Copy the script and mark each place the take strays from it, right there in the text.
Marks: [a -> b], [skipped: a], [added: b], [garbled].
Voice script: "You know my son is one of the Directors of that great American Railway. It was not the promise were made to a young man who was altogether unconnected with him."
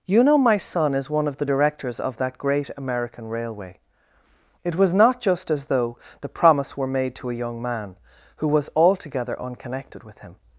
"You know my son is one of the Directors of that great American Railway. It was not [added: just as though] the promise were made to a young man who was altogether unconnected with him."